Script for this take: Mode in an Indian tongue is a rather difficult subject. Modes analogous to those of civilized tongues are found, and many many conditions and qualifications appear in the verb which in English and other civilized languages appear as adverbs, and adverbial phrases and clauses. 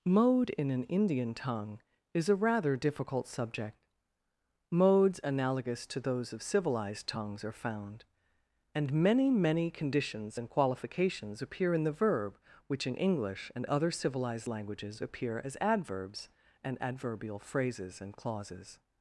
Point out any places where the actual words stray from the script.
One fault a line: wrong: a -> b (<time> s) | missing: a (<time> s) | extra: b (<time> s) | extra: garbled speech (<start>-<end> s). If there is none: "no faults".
no faults